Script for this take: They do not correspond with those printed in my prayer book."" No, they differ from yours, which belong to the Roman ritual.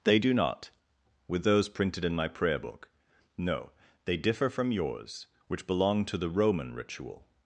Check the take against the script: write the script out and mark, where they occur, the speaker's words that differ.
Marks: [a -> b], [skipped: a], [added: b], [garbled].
They do not [skipped: correspond] with those printed in my prayer book."" No, they differ from yours, which belong to the Roman ritual.